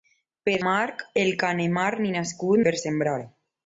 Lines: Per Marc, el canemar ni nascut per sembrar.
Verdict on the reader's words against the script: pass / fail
pass